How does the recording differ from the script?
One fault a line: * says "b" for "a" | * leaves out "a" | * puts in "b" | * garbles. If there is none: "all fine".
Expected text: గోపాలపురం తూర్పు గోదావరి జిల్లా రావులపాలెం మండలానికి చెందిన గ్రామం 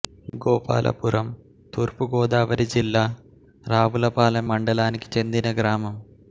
all fine